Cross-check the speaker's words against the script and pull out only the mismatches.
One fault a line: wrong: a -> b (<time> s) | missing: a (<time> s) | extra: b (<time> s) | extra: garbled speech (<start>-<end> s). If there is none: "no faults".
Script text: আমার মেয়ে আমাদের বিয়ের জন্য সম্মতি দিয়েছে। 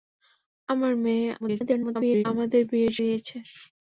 extra: garbled speech (1.4-2.2 s)
missing: জন্য সম্মতি (2.9 s)